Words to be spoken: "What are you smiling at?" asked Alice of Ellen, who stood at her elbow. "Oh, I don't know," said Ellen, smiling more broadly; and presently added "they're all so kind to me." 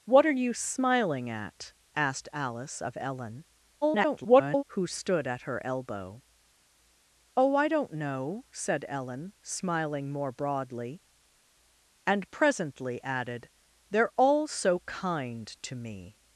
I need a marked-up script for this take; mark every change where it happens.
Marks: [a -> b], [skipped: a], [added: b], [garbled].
"What are you smiling at?" asked Alice of Ellen, [garbled] who stood at her elbow. "Oh, I don't know," said Ellen, smiling more broadly; and presently added "they're all so kind to me."